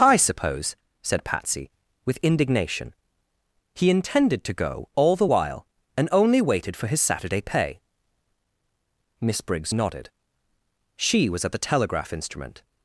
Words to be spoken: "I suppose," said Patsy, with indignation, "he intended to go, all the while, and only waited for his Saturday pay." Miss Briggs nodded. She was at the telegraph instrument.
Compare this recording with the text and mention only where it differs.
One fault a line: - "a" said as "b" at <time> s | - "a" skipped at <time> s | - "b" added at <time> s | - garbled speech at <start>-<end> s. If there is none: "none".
none